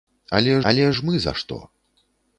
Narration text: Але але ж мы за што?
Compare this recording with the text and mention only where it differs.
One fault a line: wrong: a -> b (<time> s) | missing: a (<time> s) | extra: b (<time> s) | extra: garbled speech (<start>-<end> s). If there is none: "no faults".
no faults